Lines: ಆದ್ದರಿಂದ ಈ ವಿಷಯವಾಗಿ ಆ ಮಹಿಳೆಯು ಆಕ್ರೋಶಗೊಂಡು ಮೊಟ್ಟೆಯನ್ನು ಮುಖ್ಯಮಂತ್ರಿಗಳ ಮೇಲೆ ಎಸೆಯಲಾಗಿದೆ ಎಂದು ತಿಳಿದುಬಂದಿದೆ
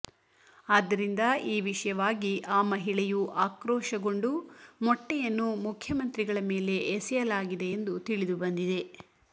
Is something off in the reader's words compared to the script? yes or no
no